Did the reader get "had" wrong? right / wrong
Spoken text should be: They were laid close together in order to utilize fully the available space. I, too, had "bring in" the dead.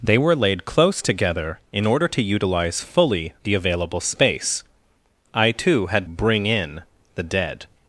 right